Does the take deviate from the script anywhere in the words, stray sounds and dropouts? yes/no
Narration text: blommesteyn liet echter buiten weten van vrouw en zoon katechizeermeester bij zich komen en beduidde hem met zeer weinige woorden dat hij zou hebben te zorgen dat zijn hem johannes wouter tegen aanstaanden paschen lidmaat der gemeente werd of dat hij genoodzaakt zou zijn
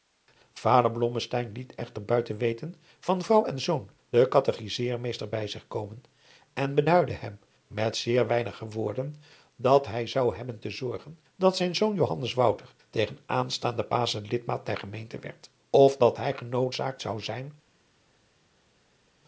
yes